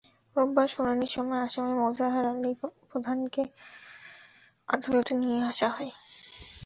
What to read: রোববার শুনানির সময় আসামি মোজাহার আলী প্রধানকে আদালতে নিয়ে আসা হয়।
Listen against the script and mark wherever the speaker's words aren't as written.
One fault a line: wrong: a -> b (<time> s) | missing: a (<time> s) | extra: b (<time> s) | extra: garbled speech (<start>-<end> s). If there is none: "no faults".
no faults